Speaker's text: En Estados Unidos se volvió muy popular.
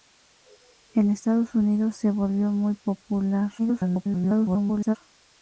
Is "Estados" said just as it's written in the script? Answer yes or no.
yes